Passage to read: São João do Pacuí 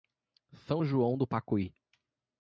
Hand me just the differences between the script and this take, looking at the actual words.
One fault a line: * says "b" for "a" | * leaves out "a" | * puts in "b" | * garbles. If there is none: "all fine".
all fine